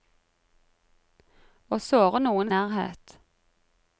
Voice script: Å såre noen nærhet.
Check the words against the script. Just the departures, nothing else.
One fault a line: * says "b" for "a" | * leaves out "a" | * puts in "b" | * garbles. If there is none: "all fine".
all fine